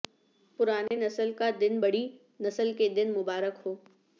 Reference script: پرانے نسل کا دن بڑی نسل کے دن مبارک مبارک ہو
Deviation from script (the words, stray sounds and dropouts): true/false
true